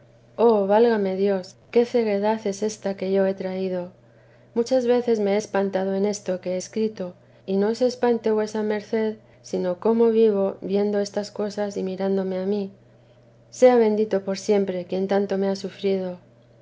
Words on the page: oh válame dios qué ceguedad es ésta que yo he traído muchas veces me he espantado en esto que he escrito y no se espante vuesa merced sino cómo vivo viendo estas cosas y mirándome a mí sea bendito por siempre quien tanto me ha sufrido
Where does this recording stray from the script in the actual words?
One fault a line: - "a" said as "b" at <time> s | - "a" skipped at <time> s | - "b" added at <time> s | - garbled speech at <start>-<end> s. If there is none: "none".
none